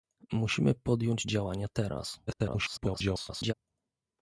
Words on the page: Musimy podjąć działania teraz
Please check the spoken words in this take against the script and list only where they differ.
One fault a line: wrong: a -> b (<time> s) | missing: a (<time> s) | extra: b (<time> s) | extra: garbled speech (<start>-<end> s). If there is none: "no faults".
extra: garbled speech (2.3-3.5 s)